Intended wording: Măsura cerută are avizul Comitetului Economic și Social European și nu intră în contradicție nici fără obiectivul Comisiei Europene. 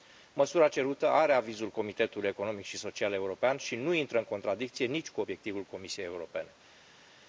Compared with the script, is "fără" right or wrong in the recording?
wrong